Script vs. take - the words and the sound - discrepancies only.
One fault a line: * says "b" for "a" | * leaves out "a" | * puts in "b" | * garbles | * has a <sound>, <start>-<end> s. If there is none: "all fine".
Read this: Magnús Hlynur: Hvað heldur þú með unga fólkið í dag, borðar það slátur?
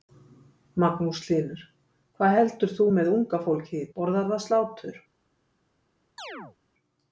* leaves out "dag"
* has a chirp, 6.2-6.6 s